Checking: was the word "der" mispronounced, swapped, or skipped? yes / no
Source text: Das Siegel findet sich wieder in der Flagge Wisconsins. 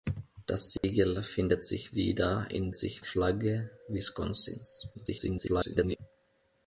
yes